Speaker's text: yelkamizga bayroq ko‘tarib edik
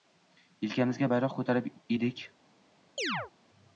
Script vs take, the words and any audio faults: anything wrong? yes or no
yes